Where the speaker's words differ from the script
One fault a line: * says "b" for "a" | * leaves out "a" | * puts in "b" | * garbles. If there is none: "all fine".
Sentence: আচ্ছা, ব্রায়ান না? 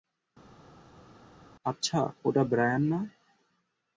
* puts in "ওটা"